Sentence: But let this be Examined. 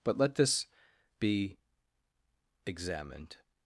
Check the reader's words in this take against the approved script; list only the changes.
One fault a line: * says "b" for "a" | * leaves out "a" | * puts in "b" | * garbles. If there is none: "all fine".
all fine